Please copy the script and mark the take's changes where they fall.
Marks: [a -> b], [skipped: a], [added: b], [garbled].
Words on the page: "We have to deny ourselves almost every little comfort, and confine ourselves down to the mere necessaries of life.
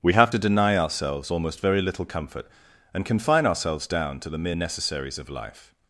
"We have to deny ourselves almost [every -> very] little comfort, and confine ourselves down to the mere necessaries of life.